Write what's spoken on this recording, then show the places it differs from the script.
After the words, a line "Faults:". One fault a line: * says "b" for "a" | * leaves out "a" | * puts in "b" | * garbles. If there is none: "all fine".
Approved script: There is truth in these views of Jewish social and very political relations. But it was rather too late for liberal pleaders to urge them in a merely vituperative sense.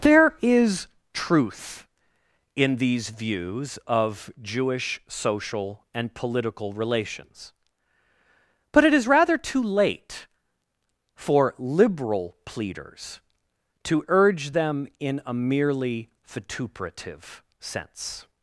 There is truth in these views of Jewish social and political relations. But it is rather too late for liberal pleaders to urge them in a merely vituperative sense.
Faults:
* leaves out "very"
* says "is" for "was"